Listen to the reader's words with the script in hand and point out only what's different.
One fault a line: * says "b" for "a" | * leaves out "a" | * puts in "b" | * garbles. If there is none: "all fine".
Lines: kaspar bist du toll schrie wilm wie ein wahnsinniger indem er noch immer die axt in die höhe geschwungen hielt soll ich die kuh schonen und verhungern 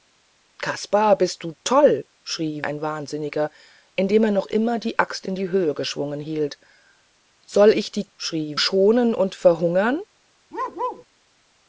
* leaves out "wilm wie"
* says "schrie" for "kuh"